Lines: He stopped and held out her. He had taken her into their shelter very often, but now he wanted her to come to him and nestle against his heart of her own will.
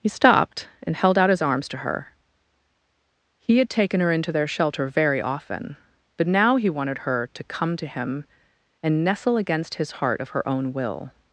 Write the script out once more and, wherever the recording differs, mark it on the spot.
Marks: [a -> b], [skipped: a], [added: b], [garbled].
He stopped and held out [added: his arms to] her. He had taken her into their shelter very often, but now he wanted her to come to him and nestle against his heart of her own will.